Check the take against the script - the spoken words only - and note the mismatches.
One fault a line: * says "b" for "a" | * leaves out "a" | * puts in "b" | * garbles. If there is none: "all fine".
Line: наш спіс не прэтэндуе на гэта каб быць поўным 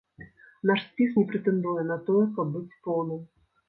* says "тое" for "гэта"